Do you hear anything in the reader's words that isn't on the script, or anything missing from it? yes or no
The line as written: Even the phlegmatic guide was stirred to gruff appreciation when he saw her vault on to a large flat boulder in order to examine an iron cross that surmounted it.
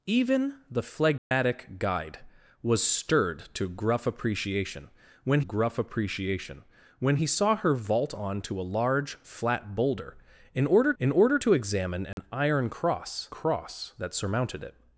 yes